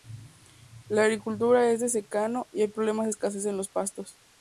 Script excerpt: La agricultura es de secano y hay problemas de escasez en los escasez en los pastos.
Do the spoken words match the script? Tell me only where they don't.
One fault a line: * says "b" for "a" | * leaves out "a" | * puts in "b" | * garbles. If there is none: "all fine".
* leaves out "escasez en los"